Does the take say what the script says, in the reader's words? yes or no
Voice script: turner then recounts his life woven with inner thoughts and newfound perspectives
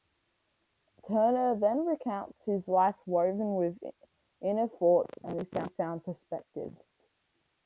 yes